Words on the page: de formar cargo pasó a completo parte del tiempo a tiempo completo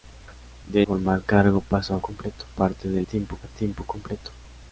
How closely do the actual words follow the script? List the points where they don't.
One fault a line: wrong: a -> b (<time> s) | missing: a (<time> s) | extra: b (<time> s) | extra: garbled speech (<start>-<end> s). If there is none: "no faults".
no faults